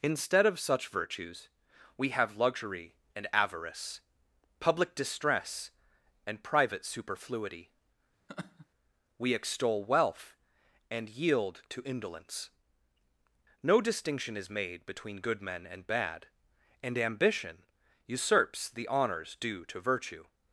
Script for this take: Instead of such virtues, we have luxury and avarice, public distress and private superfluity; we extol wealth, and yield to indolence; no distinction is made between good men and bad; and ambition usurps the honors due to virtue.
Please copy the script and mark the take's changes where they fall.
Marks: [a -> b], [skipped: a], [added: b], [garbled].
Instead of such virtues, we have luxury and avarice, public distress and private superfluity; we extol wealth, and yield to indolence; no distinction is made between good men and bad; and ambition usurps the honors due to virtue.